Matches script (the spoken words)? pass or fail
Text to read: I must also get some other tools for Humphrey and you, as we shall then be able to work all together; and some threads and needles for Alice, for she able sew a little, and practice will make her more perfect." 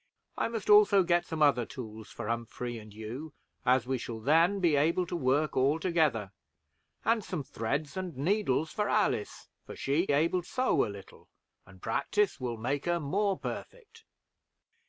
pass